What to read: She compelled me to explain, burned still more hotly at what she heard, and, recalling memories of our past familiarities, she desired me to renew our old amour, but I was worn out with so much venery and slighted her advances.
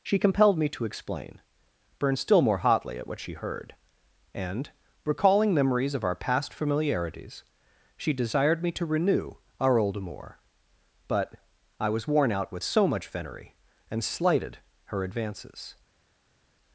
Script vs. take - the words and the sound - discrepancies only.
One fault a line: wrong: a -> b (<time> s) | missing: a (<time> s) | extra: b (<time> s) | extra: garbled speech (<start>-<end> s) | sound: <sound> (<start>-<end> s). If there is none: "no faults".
no faults